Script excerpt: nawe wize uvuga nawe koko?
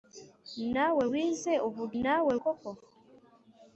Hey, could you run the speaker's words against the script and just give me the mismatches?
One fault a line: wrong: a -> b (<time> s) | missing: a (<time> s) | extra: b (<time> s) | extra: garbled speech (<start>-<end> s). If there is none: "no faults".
no faults